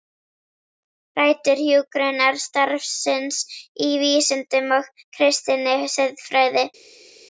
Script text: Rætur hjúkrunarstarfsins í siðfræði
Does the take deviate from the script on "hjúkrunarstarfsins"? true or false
false